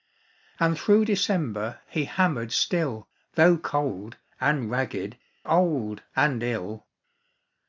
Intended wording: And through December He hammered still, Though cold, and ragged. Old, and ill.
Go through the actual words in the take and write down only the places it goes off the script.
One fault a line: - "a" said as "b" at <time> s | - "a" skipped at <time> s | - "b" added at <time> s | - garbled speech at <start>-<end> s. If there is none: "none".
none